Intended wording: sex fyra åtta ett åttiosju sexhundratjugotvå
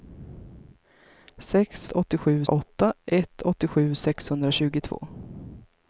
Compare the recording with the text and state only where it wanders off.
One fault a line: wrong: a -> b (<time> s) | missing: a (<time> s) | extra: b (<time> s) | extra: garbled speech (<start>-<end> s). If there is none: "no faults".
wrong: fyra -> åttiosju (1.9 s)